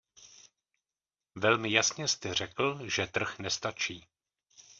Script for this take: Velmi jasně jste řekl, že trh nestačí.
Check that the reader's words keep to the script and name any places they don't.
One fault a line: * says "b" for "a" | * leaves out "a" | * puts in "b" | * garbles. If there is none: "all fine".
all fine